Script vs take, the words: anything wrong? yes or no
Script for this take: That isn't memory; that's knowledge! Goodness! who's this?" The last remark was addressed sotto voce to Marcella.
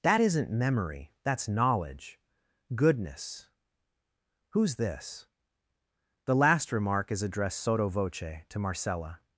yes